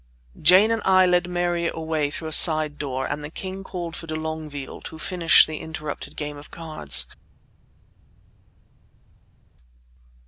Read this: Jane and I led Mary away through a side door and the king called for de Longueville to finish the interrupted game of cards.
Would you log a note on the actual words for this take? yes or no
no